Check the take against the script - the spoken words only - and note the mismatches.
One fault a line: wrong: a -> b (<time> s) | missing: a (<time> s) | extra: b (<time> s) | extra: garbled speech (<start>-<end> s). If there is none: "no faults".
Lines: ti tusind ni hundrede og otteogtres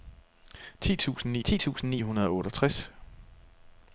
extra: ti tusind ni (1.4 s)